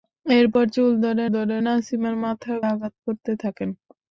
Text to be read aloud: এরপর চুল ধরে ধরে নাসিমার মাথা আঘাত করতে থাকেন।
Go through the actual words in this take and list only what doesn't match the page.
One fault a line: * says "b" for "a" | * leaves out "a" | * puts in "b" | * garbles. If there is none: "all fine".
all fine